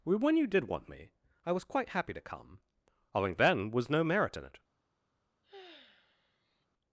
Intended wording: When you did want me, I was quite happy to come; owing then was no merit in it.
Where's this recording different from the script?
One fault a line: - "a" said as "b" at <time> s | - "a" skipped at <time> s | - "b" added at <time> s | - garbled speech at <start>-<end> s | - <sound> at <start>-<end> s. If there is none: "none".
- sigh at 5.4-6.7 s